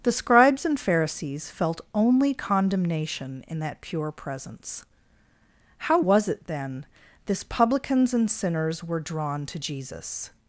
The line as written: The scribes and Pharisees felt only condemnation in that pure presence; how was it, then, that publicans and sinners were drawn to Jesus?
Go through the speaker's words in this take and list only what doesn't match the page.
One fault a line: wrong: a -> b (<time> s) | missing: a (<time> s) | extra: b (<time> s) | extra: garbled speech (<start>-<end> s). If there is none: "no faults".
wrong: that -> this (7.2 s)